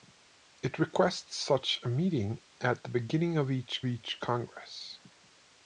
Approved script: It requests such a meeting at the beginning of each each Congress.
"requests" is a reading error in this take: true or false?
false